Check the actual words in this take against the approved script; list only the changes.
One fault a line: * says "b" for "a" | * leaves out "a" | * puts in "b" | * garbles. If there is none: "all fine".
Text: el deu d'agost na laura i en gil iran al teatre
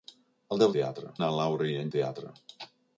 * says "teatre" for "d'agost"
* leaves out "gil iran al"